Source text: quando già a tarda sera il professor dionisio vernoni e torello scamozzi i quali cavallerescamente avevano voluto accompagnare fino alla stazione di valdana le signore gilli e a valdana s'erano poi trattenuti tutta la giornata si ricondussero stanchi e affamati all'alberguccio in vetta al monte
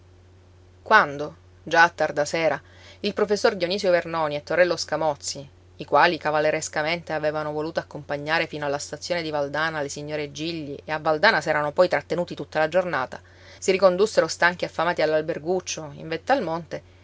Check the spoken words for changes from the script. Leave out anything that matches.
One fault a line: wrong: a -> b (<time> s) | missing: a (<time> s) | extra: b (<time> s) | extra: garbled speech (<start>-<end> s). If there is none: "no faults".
no faults